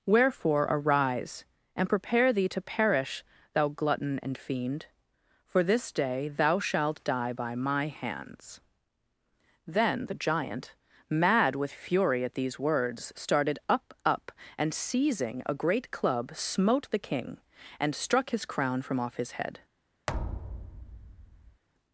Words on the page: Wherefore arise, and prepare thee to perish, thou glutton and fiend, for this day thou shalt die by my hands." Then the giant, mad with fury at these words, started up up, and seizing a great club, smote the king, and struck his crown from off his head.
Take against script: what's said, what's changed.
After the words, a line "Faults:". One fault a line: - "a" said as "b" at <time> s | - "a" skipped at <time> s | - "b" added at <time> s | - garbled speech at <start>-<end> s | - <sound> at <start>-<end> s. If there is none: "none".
Wherefore arise, and prepare thee to perish, thou glutton and fiend, for this day thou shalt die by my hands." Then the giant, mad with fury at these words, started up up, and seizing a great club, smote the king, and struck his crown from off his head.
Faults:
- thud at 20.1-21.6 s